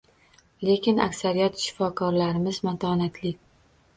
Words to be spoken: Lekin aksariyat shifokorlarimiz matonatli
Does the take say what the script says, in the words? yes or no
yes